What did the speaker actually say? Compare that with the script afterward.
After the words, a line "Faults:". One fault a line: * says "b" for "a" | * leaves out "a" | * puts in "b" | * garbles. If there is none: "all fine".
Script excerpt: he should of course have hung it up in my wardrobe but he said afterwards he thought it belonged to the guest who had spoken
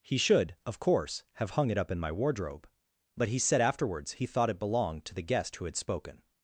he should of course have hung it up in my wardrobe but he said afterwards he thought it belonged to the guest who had spoken
Faults:
all fine